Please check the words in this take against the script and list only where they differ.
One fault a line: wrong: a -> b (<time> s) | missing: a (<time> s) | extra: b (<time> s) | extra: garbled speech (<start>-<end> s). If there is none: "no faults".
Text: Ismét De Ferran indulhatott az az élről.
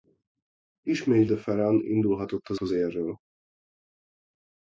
no faults